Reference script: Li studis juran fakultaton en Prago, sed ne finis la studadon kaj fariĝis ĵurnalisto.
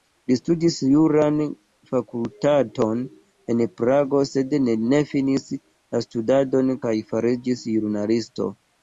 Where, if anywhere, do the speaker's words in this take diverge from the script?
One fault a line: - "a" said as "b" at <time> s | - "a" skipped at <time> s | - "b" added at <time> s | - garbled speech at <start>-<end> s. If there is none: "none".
none